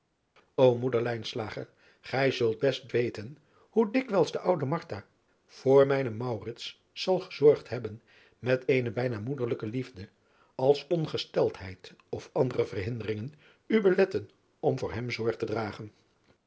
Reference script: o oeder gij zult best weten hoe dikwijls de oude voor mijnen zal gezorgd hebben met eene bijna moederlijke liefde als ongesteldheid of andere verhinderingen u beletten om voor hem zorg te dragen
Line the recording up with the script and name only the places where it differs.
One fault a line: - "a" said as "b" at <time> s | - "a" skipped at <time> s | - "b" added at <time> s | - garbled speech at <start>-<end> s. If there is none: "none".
none